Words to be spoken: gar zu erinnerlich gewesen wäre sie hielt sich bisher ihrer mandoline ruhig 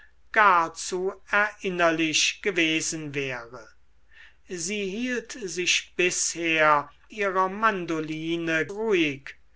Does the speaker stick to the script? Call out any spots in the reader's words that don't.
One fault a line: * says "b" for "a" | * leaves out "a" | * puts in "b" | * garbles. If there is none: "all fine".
all fine